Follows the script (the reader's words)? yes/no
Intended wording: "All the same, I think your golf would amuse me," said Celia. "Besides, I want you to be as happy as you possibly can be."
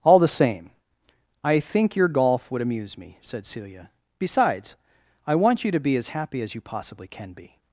yes